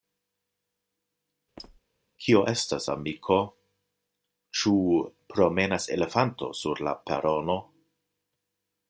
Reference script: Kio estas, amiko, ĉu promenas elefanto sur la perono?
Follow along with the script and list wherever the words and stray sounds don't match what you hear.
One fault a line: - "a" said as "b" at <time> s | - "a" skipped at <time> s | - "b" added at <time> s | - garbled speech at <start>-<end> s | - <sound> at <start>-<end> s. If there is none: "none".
- squeak at 1.6-1.8 s